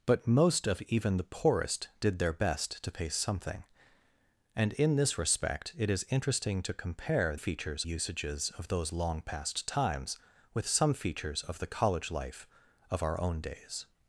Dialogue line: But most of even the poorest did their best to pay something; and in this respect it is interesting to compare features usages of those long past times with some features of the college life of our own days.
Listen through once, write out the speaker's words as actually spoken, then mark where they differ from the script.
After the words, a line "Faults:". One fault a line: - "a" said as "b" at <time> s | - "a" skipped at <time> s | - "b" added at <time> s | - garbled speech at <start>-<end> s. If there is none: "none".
But most of even the poorest did their best to pay something; and in this respect it is interesting to compare features usages of those long past times with some features of the college life of our own days.
Faults:
none